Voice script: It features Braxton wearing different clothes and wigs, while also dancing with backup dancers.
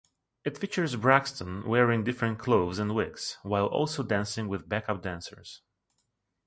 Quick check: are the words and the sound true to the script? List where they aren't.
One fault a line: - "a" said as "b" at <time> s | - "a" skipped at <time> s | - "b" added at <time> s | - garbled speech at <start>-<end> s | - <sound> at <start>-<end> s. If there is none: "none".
none